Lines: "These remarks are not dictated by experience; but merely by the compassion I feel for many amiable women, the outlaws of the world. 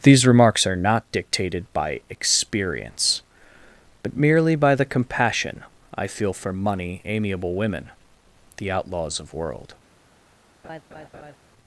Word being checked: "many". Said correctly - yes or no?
no